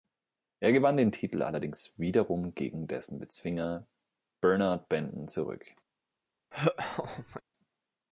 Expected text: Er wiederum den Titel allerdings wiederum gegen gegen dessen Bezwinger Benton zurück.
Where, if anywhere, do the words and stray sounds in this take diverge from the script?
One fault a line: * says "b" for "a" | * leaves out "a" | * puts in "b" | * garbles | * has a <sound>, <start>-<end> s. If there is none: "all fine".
* says "gewann" for "wiederum"
* leaves out "gegen"
* puts in "Bernard"
* has a laugh, 6.5-7.4 s